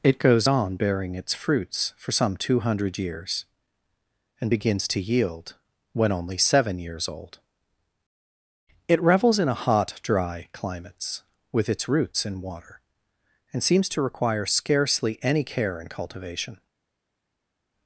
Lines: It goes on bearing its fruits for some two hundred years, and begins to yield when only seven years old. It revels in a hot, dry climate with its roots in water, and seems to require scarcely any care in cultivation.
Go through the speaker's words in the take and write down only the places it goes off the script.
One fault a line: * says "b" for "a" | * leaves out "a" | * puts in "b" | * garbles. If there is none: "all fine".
* says "climates" for "climate"